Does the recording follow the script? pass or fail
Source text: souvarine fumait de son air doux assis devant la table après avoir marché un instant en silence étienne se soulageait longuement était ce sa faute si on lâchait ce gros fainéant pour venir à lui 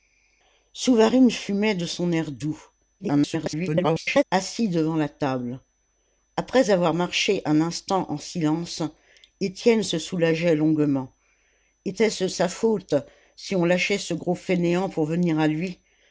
fail